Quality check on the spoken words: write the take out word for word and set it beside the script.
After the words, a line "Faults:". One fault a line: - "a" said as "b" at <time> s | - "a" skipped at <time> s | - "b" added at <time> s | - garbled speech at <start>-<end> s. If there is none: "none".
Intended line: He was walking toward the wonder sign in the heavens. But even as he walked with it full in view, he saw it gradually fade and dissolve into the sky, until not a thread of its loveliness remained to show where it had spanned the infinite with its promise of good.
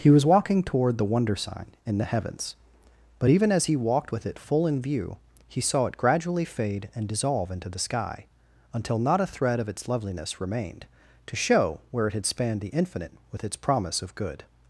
He was walking toward the wonder sign in the heavens. But even as he walked with it full in view, he saw it gradually fade and dissolve into the sky, until not a thread of its loveliness remained to show where it had spanned the infinite with its promise of good.
Faults:
none